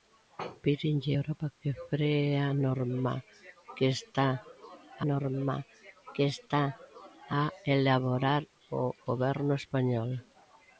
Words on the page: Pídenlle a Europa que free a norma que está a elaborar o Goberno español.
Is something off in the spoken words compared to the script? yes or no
yes